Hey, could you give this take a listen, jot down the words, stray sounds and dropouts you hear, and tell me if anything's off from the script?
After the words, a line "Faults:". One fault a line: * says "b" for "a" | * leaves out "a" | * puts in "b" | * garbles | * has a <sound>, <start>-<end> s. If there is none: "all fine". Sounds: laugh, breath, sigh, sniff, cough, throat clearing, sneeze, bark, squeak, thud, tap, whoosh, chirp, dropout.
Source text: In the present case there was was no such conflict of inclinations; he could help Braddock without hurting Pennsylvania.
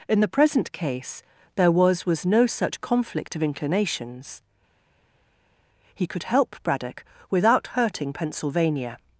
In the present case there was was no such conflict of inclinations; he could help Braddock without hurting Pennsylvania.
Faults:
all fine